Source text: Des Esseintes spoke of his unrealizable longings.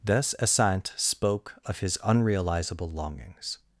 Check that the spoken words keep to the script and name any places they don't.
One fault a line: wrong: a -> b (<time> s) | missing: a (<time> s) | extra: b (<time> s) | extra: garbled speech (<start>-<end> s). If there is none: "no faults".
no faults